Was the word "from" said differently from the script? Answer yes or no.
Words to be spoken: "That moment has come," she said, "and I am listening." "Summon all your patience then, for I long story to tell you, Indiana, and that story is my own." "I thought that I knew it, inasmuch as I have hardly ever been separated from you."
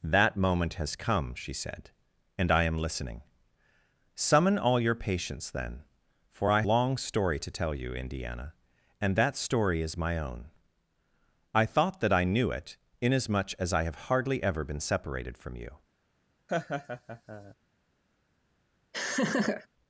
no